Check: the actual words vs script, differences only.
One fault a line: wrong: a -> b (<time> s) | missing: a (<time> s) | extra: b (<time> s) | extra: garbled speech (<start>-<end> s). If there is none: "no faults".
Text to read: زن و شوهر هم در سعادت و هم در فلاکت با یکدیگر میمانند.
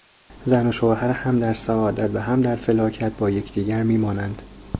no faults